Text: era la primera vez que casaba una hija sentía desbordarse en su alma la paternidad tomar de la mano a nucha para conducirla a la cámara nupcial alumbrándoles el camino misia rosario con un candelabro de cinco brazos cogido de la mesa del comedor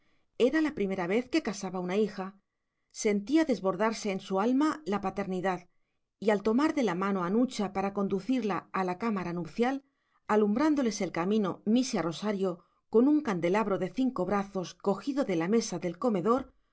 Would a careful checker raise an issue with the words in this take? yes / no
yes